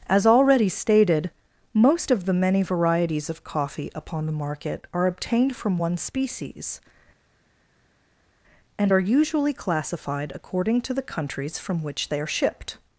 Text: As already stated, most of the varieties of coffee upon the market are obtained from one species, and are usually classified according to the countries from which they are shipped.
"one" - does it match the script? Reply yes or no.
yes